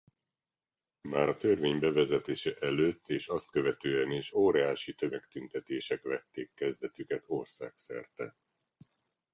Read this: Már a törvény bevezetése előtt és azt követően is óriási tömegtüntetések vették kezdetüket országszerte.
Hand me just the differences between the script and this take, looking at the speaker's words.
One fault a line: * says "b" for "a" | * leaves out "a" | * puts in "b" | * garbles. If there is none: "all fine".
all fine